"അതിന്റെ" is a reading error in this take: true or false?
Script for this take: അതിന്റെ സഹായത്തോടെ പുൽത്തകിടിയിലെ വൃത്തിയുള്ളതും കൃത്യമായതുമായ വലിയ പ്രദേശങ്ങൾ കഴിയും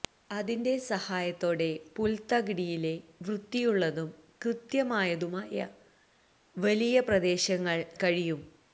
false